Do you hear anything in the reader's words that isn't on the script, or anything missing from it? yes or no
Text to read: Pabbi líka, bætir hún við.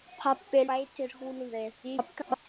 yes